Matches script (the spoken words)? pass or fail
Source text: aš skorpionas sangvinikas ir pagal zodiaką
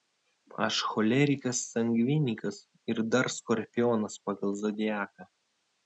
fail